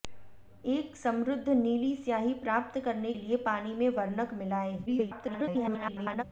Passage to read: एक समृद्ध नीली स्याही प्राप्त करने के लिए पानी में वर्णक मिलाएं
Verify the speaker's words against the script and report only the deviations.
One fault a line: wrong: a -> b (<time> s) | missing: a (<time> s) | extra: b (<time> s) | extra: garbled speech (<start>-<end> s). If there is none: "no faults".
missing: के (3.1 s)
extra: garbled speech (4.9-6.2 s)